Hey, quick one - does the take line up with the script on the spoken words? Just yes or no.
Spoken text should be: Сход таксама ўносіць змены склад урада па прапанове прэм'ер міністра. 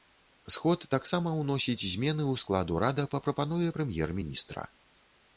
no